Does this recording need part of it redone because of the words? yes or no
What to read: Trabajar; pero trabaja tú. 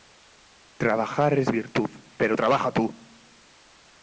yes